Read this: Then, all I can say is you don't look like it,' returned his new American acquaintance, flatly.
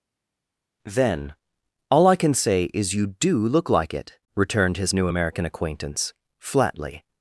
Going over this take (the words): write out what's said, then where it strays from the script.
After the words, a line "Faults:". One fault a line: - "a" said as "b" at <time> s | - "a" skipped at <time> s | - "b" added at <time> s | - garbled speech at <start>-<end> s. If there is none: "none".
Then, all I can say is you do look like it,' returned his new American acquaintance, flatly.
Faults:
- "don't" said as "do" at 3.2 s